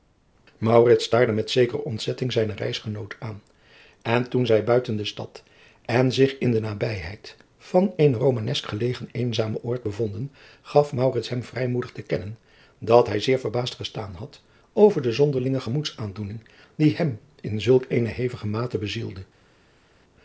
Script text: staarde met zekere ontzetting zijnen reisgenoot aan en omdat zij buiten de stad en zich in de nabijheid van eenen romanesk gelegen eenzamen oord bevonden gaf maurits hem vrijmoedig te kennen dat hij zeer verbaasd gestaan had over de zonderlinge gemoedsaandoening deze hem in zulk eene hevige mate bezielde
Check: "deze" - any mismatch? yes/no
yes